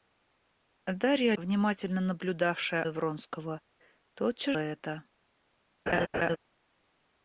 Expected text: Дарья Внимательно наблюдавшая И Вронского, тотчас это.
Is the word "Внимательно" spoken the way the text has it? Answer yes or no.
yes